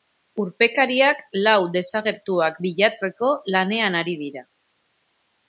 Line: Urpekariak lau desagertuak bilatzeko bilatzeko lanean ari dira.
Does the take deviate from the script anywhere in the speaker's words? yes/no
yes